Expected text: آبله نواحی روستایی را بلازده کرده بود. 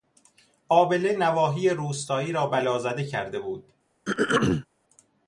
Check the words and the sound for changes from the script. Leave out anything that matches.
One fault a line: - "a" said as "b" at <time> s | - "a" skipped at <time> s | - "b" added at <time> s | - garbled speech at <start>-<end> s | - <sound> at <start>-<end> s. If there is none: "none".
- throat clearing at 4.1-4.7 s